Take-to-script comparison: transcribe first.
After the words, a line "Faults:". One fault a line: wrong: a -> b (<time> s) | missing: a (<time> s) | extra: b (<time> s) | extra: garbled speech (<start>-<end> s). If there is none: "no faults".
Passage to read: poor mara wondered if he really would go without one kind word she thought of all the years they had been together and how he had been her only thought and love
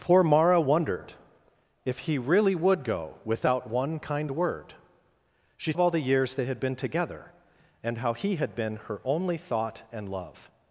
poor mara wondered if he really would go without one kind word she of all the years they had been together and how he had been her only thought and love
Faults:
missing: thought (5.7 s)